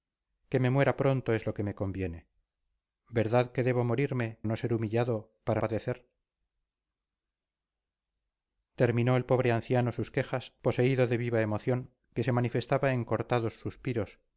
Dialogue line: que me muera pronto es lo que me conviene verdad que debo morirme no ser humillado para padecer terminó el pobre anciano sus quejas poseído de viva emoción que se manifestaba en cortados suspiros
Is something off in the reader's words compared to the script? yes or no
no